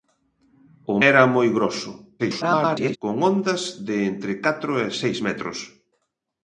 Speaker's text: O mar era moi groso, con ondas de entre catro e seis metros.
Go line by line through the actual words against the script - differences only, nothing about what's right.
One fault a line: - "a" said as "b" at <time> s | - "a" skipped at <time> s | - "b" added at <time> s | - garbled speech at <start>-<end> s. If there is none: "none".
- "mar" skipped at 1.0 s
- garbled speech at 2.2-3.0 s